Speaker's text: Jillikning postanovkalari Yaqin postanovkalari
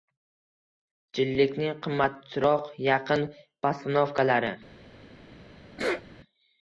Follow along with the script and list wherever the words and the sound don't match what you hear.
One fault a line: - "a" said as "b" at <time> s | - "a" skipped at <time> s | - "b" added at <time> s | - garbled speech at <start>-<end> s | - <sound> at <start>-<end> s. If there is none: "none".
- "postanovkalari" said as "qimmatroq" at 1.9 s
- sneeze at 5.8-6.0 s